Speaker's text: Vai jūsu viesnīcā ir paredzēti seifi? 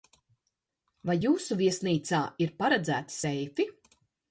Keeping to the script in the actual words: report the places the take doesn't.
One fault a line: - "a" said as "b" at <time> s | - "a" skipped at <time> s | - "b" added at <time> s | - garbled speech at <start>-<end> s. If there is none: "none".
none